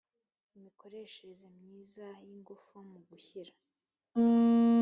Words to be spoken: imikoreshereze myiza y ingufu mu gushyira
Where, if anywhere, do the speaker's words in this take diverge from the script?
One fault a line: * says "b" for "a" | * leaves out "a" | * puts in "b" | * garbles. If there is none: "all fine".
all fine